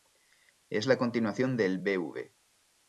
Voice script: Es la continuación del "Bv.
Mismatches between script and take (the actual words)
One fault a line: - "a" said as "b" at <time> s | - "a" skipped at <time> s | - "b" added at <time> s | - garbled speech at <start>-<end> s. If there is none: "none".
none